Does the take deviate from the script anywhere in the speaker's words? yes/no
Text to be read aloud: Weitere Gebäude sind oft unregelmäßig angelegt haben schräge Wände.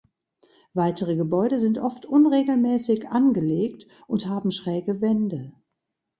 yes